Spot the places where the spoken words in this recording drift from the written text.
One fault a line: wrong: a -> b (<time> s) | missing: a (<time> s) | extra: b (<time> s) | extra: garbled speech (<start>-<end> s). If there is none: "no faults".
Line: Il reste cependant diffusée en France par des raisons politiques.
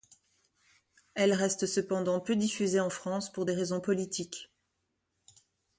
wrong: Il -> Elle (1.1 s)
extra: peu (2.2 s)
wrong: par -> pour (3.3 s)